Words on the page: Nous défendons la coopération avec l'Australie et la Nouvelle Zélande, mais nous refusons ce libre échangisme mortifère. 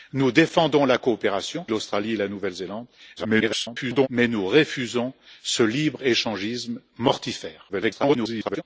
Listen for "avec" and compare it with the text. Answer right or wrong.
wrong